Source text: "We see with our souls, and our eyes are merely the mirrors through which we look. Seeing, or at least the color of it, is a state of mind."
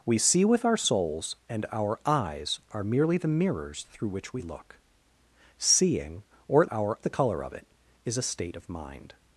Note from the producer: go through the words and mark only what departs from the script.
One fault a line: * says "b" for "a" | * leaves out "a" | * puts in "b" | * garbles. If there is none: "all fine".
* says "our" for "least"